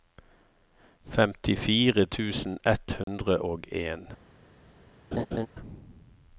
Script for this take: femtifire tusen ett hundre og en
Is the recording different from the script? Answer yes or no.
no